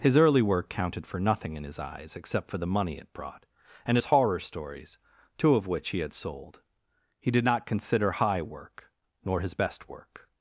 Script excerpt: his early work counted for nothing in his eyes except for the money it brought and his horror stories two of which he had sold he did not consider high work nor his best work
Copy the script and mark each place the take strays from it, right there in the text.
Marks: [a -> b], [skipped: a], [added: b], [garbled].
his early work counted for nothing in his eyes except for the money it brought and his horror stories two of which he had sold he did not consider high work nor his best work